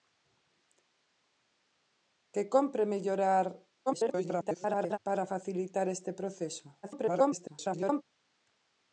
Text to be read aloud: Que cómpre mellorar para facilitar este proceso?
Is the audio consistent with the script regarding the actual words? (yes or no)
no